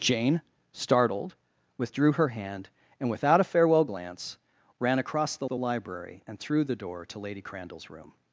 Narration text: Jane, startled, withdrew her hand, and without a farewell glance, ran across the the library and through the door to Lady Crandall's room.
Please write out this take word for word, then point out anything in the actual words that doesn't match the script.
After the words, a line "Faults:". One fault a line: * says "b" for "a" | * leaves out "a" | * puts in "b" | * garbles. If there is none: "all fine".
Jane, startled, withdrew her hand, and without a farewell glance, ran across the the library and through the door to Lady Crandall's room.
Faults:
all fine